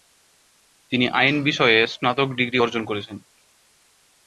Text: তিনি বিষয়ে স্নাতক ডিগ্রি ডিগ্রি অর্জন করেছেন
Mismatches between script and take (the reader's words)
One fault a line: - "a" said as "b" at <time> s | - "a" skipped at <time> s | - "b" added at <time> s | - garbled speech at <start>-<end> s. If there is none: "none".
- "আইন" added at 1.1 s
- "ডিগ্রি" skipped at 2.6 s